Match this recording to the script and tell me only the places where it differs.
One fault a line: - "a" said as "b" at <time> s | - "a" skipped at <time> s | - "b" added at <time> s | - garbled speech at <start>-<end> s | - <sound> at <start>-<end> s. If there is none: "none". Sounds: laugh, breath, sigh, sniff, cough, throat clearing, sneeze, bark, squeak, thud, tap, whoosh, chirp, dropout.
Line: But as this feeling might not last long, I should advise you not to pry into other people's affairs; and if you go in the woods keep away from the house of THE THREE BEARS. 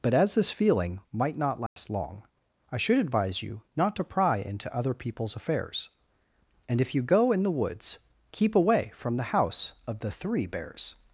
- dropout at 1.7-1.8 s